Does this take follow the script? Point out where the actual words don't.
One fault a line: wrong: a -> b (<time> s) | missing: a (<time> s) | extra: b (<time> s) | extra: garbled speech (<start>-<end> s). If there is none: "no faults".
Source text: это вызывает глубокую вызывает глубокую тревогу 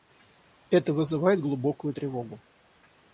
missing: вызывает глубокую (1.9 s)